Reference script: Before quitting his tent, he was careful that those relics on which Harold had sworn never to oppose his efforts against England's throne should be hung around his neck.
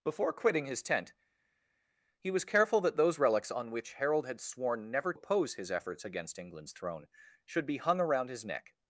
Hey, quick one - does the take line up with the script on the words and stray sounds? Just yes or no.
no